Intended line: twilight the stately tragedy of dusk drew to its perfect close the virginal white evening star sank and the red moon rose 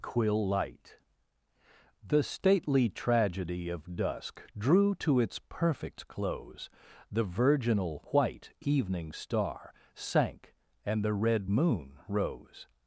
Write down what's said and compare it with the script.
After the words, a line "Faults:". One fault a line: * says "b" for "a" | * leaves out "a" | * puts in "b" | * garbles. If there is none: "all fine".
quill light the stately tragedy of dusk drew to its perfect close the virginal white evening star sank and the red moon rose
Faults:
* says "quill light" for "twilight"